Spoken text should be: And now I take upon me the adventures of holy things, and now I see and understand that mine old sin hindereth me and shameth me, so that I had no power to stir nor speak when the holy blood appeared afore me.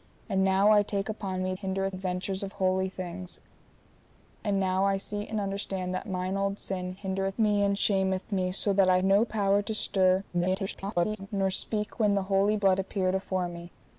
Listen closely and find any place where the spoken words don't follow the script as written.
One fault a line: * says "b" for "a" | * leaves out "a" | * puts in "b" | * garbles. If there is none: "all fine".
* says "hindereth" for "the"
* leaves out "had"
* garbles